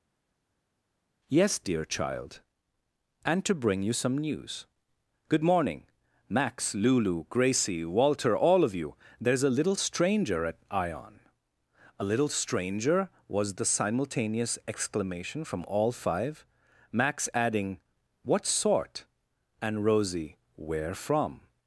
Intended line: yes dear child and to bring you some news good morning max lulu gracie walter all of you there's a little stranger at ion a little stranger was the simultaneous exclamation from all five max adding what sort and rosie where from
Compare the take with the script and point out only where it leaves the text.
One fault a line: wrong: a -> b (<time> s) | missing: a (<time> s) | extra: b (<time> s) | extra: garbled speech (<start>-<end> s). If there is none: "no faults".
no faults